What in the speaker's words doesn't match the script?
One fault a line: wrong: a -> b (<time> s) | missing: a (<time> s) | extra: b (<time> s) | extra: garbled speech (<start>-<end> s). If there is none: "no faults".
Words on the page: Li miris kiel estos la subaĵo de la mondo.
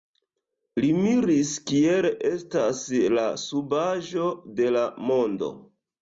wrong: estos -> estas (2.3 s)